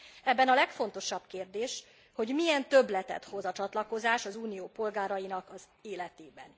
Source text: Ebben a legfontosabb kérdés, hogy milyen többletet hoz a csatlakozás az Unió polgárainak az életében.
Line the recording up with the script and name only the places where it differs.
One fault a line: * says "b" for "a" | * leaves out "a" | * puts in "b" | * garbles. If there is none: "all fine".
all fine